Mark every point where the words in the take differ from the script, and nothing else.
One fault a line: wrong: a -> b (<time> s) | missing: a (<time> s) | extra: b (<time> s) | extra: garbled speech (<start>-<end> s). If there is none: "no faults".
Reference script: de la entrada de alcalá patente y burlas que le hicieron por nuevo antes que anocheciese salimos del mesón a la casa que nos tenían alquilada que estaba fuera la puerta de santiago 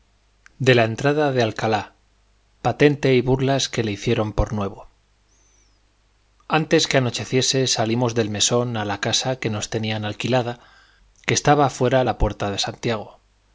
no faults